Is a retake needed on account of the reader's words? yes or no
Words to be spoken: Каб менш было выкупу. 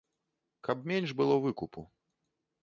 no